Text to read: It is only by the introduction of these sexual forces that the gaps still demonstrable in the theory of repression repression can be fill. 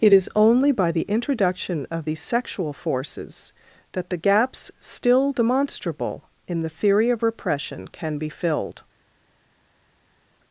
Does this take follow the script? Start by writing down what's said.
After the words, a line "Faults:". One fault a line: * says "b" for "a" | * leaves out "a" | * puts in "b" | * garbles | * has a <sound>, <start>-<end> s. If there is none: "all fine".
It is only by the introduction of these sexual forces that the gaps still demonstrable in the theory of repression can be filled.
Faults:
* leaves out "repression"
* says "filled" for "fill"